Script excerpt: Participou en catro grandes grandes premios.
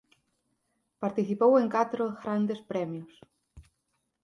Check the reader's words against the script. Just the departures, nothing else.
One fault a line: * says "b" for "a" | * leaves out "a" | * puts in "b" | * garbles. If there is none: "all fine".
* leaves out "grandes"